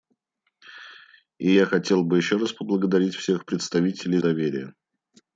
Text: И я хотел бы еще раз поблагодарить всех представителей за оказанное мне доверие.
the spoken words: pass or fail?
fail